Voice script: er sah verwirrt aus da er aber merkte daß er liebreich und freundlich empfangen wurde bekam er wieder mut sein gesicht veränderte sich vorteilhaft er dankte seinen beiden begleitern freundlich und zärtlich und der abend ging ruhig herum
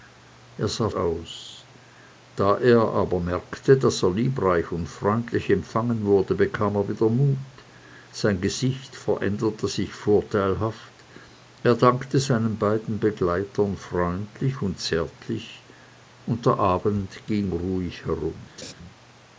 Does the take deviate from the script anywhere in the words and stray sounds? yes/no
yes